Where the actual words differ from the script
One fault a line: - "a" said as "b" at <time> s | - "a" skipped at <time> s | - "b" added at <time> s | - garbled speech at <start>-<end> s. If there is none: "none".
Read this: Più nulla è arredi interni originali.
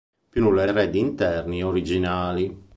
none